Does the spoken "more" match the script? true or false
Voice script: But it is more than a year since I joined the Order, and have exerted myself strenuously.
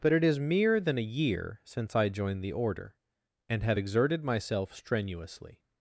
false